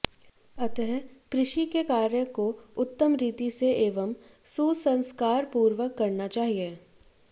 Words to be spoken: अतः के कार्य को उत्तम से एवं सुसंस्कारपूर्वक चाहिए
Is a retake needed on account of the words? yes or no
yes